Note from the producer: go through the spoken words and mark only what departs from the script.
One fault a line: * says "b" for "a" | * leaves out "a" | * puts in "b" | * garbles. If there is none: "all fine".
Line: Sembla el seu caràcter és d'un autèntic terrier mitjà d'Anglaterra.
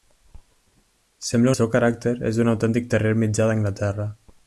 all fine